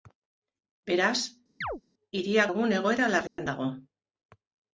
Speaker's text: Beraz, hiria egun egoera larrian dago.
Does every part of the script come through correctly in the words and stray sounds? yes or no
no